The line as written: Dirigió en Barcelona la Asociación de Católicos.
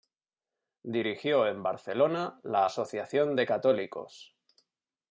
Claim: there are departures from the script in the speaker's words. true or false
false